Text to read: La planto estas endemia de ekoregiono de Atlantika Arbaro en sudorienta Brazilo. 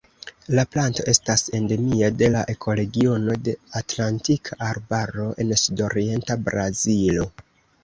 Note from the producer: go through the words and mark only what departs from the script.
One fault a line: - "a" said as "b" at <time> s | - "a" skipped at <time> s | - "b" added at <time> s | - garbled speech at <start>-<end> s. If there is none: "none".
- "la" added at 2.3 s